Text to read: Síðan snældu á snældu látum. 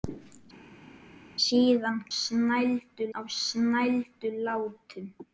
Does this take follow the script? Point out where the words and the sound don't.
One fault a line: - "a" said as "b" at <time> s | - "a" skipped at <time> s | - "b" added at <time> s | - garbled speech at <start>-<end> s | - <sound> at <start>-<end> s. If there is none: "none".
none